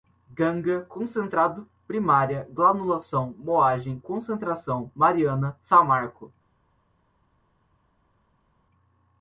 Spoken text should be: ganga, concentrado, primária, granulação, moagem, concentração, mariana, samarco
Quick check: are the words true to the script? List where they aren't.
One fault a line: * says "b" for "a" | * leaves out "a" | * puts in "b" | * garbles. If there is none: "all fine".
all fine